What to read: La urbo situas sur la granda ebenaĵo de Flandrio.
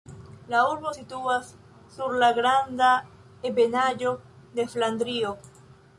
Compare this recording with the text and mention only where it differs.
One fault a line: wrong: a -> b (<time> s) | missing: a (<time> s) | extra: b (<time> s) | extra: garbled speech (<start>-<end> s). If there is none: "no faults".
no faults